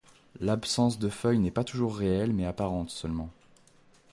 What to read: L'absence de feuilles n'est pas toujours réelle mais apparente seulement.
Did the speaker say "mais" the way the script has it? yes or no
yes